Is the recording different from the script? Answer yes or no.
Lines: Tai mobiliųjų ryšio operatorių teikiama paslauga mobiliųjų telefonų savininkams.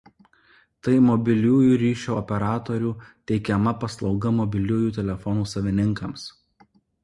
no